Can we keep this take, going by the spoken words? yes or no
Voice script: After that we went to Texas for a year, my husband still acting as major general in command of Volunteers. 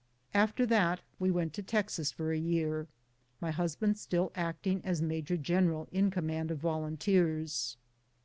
yes